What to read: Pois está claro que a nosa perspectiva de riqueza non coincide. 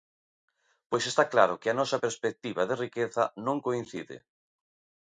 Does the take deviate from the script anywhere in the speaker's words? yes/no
no